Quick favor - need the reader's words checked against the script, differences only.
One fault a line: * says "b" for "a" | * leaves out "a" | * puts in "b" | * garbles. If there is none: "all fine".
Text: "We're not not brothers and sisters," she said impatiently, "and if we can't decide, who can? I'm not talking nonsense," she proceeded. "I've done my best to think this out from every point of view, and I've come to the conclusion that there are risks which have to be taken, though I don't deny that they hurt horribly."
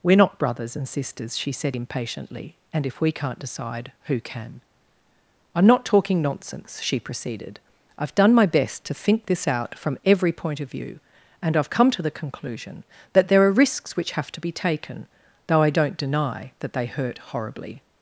* leaves out "not"